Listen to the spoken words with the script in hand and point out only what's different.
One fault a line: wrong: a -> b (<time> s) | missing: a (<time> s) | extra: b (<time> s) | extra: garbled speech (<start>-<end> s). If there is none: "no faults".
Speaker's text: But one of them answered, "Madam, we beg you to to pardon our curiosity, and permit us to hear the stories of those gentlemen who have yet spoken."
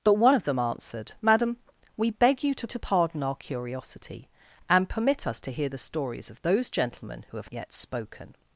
no faults